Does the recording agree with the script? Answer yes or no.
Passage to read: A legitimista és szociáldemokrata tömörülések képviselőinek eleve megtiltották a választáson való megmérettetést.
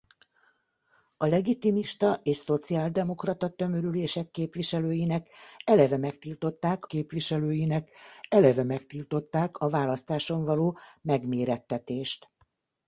no